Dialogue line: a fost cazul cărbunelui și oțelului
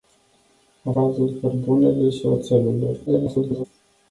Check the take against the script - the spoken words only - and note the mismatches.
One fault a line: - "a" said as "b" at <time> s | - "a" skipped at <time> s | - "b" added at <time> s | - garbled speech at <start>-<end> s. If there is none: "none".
- "fost" skipped at 0.9 s
- garbled speech at 3.1-3.7 s